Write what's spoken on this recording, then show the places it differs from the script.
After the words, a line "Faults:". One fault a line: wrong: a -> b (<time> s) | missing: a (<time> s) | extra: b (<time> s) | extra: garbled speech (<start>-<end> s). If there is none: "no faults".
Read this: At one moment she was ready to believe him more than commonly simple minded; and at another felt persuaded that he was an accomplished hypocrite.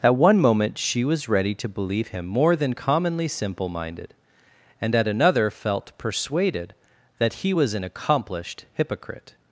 At one moment she was ready to believe him more than commonly simple minded; and at another felt persuaded that he was an accomplished hypocrite.
Faults:
no faults